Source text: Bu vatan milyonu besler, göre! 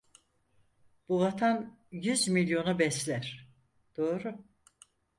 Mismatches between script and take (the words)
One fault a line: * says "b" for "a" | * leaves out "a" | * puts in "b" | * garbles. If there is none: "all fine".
* puts in "yüz"
* says "doğru" for "göre"